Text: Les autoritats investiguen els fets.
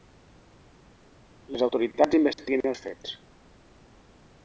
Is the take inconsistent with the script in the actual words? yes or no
no